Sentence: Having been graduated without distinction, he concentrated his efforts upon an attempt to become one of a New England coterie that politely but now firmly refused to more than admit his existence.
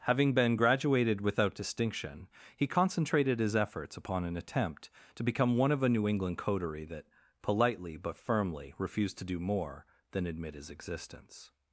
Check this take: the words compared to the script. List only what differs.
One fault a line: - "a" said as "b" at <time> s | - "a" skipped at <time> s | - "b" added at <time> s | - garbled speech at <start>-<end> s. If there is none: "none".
- "now" skipped at 8.1 s
- "do" added at 9.2 s